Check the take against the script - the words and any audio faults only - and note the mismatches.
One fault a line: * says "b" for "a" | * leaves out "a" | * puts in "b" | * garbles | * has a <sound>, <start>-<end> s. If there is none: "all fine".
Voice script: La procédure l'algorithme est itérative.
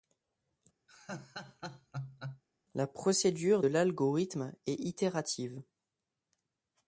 * has a laugh, 0.9-2.4 s